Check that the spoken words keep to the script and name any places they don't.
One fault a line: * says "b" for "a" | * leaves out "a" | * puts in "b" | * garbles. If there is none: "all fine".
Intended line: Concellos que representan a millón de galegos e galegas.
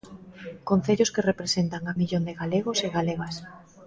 all fine